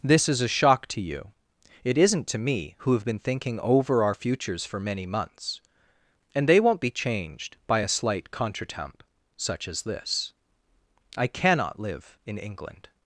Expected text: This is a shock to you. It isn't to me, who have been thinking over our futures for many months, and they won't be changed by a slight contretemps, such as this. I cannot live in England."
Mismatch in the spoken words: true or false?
false